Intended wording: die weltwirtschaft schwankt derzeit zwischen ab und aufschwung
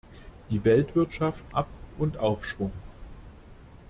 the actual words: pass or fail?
fail